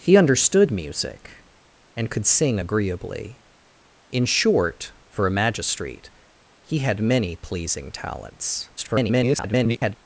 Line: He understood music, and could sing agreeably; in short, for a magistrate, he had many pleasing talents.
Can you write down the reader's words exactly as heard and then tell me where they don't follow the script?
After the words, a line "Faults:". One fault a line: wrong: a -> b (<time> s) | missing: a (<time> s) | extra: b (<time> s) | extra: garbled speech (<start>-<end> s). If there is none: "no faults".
He understood music, and could sing agreeably; in short, for a magistrate, he had many pleasing talents. [garbled]
Faults:
extra: garbled speech (8.8-10.0 s)